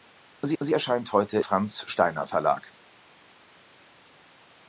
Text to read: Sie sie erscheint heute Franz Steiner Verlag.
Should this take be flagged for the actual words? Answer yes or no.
no